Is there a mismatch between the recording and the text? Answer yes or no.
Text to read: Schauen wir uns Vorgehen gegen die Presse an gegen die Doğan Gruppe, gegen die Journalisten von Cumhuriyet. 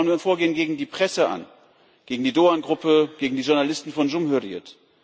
no